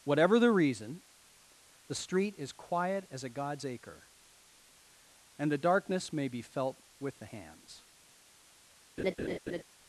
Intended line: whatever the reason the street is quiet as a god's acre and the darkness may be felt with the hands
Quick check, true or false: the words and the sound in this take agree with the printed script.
false